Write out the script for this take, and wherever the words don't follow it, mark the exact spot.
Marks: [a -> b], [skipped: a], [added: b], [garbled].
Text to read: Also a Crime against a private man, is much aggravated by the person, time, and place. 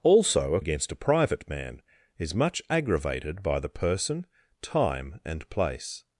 Also a [skipped: Crime] against a private man, is much aggravated by the person, time, and place.